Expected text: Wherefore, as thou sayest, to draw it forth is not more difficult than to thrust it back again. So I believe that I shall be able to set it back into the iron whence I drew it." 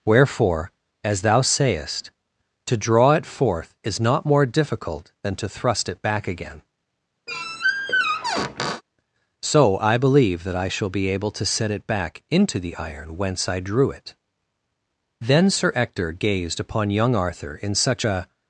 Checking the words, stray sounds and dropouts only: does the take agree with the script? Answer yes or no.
no